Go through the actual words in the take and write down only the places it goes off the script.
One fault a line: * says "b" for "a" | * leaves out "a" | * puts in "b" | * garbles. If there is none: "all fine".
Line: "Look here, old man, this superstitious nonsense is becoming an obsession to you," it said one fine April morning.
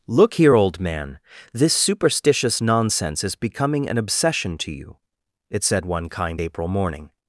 * says "kind" for "fine"